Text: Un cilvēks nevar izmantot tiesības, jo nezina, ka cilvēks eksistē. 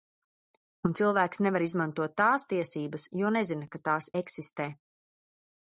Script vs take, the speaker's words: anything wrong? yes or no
yes